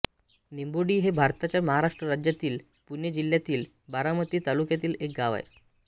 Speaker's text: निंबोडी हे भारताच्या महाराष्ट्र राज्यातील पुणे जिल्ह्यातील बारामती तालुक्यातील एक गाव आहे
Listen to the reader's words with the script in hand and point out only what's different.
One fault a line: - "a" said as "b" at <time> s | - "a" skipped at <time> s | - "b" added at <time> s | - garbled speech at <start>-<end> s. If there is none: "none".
none